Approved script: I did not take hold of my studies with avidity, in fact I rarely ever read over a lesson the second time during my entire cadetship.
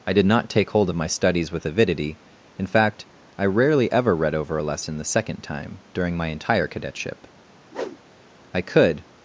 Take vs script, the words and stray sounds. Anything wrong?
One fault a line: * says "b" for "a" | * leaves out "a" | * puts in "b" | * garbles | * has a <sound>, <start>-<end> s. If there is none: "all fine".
* has a whoosh, 7.7-8.0 s
* puts in "I could"